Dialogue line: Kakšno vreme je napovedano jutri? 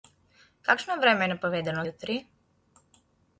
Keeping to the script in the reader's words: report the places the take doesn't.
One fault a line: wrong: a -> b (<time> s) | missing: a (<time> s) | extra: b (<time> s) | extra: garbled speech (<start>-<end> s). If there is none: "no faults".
no faults